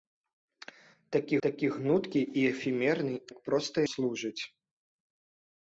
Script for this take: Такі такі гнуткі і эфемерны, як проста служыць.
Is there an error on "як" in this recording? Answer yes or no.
no